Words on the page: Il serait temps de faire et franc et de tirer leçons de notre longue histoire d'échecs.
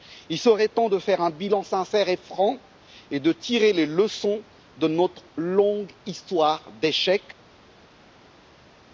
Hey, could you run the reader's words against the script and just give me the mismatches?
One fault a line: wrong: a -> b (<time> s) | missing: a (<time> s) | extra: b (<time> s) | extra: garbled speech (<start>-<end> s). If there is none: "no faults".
extra: un bilan sincère (1.2 s)
extra: les (3.7 s)